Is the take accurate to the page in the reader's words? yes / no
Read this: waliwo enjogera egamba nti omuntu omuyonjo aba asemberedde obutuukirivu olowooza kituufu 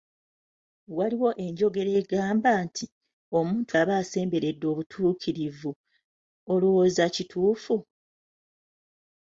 no